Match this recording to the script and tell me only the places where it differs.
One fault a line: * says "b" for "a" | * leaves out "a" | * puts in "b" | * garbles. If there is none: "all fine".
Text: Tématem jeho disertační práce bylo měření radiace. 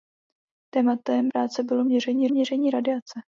* leaves out "jeho disertační"
* puts in "měření"